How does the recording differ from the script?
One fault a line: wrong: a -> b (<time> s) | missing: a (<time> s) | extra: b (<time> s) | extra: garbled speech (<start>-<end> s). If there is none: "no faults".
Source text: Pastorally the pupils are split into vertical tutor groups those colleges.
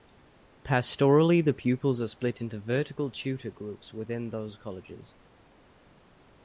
extra: within (3.9 s)